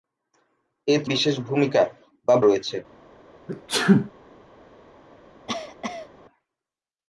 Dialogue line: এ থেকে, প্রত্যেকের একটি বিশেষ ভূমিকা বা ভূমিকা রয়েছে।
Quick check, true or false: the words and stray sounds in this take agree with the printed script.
false